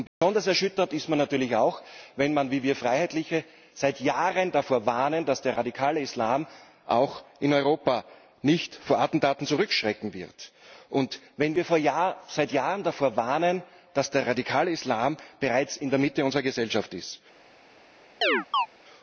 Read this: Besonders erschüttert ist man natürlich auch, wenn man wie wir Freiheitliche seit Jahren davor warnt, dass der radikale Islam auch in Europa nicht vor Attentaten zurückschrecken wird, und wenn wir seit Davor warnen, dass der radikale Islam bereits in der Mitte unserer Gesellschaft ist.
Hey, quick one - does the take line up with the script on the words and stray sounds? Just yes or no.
no